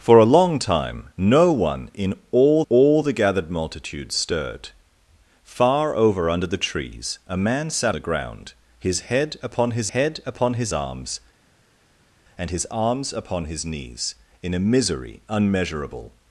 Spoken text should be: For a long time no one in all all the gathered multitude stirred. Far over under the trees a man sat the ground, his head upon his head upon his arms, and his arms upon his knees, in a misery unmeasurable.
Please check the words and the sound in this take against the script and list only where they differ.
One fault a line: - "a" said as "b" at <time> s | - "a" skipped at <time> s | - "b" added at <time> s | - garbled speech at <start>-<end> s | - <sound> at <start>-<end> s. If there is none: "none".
none